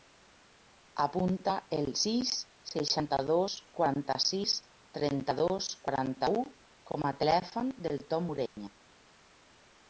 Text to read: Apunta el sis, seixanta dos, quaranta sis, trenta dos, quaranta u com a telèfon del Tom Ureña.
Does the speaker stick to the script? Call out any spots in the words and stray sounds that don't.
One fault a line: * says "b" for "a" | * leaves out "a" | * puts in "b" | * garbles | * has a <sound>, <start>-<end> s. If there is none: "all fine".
* has a dropout, 8.5-8.6 s